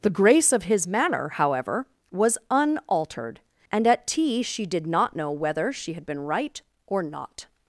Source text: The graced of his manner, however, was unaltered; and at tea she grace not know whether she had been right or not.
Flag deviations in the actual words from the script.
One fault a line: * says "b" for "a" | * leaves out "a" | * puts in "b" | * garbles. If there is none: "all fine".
* says "grace" for "graced"
* says "did" for "grace"